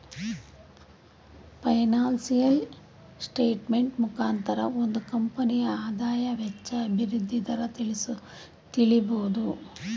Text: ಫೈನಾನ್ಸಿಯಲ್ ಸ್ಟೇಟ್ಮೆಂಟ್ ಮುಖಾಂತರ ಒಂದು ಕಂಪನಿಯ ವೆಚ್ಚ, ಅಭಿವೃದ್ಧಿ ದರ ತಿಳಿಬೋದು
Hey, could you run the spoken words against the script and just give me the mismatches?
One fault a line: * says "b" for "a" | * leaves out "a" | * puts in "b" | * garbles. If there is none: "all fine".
* puts in "ಆದಾಯ"